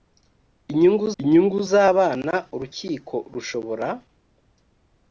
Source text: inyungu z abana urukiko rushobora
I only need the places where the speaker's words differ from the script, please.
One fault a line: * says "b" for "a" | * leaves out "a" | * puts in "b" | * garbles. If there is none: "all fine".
* puts in "inyungu"